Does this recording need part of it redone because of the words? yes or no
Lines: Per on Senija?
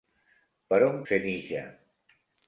no